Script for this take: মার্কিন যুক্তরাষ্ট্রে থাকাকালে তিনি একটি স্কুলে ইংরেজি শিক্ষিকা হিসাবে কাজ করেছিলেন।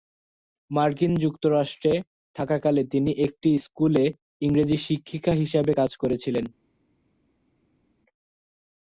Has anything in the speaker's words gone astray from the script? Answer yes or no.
no